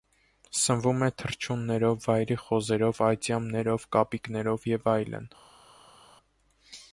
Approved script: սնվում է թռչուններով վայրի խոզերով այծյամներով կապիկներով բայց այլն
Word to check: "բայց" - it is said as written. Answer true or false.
false